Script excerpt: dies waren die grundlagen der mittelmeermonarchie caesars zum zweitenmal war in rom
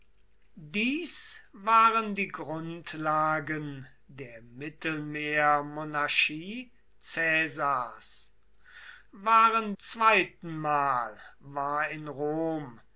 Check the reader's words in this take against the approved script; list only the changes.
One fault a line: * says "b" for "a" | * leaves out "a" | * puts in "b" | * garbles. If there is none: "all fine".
* says "waren" for "zum"